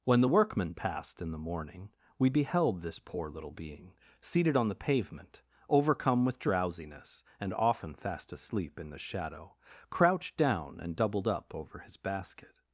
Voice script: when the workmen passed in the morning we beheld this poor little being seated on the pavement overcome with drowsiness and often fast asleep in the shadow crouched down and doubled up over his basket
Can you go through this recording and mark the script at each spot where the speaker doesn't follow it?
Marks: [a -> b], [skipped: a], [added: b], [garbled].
when the workmen passed in the morning we beheld this poor little being seated on the pavement overcome with drowsiness and often fast asleep in the shadow crouched down and doubled up over his basket